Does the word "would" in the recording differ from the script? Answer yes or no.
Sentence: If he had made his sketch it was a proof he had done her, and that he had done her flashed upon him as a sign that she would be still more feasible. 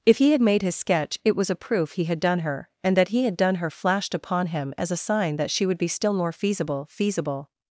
no